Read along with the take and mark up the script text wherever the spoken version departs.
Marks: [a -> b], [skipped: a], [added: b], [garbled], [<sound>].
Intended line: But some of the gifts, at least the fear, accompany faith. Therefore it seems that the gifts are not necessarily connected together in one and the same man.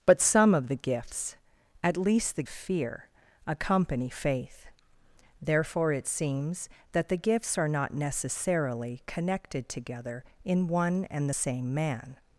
But some of the gifts, at least the fear, accompany faith. Therefore it seems that the gifts are not necessarily connected together in one and the same man.